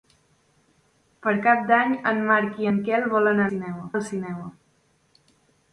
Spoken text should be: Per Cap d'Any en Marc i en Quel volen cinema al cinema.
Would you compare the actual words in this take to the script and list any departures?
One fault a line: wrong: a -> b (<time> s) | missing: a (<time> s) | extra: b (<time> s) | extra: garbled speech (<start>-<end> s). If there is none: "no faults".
no faults